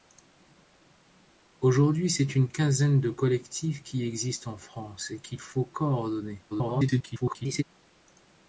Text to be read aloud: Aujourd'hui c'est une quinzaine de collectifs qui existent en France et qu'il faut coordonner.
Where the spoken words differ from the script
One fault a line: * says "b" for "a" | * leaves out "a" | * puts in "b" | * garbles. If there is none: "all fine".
* garbles